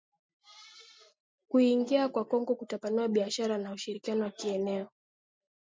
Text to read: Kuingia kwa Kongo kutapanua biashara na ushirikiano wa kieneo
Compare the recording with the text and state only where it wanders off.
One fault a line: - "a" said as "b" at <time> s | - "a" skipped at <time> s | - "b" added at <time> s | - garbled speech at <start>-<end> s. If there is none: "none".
none